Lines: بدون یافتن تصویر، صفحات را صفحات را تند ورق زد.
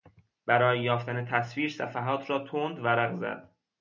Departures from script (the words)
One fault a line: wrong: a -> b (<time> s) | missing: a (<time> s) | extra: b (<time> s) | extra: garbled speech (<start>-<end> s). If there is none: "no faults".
wrong: بدون -> برای (0.5 s)
missing: صفحات را (2.4 s)